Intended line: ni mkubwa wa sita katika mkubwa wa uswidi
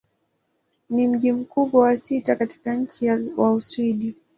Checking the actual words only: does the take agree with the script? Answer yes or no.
no